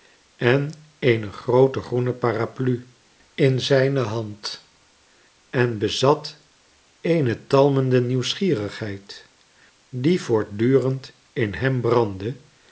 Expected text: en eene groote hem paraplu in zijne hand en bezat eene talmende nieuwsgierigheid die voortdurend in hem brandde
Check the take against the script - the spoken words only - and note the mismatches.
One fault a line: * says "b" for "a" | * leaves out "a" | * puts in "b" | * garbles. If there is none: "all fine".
* says "groene" for "hem"